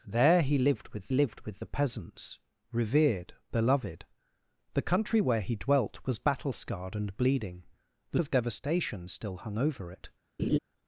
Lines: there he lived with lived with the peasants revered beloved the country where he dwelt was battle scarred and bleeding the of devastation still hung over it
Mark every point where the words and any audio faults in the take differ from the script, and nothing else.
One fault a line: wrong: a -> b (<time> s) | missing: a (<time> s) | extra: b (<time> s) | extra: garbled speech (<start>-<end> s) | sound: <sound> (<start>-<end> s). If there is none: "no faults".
sound: laugh (10.4-10.6 s)